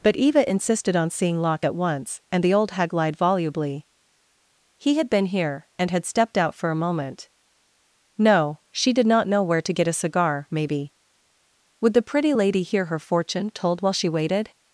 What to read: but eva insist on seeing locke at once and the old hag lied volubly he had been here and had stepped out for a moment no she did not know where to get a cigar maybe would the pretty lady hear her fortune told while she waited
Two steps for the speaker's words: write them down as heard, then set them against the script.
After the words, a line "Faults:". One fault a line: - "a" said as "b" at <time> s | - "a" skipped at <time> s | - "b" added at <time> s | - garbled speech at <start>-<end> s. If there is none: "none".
but eva insisted on seeing locke at once and the old hag lied volubly he had been here and had stepped out for a moment no she did not know where to get a cigar maybe would the pretty lady hear her fortune told while she waited
Faults:
- "insist" said as "insisted" at 0.5 s